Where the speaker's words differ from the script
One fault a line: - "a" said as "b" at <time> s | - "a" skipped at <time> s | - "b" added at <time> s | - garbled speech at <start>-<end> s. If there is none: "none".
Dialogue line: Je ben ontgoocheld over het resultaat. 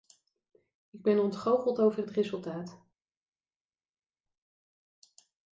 - "Je" said as "Ik" at 0.9 s